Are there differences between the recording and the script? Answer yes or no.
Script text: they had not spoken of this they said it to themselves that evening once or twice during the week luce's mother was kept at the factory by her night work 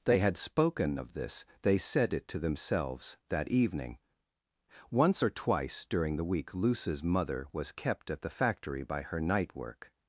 yes